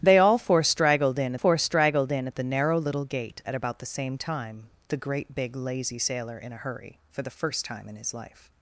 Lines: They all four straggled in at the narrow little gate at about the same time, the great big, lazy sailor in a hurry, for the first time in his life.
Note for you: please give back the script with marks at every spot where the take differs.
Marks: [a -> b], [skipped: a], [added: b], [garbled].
They all four straggled in [added: four straggled in] at the narrow little gate at about the same time, the great big, lazy sailor in a hurry, for the first time in his life.